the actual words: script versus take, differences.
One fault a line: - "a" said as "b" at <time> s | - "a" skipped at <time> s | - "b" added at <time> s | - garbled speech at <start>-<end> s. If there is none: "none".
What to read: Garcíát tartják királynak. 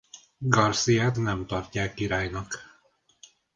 - "nem" added at 1.2 s